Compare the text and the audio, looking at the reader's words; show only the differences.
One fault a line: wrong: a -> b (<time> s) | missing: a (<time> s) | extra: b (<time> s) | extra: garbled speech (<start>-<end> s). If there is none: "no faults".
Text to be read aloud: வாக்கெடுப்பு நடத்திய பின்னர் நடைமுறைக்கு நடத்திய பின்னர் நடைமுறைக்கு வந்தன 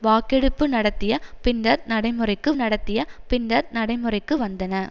no faults